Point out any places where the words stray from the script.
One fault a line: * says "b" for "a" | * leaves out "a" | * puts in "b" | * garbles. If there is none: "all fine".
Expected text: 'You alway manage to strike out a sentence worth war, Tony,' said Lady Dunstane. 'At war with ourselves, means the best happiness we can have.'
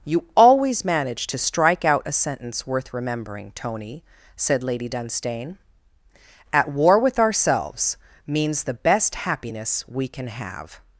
* says "always" for "alway"
* says "remembering" for "war"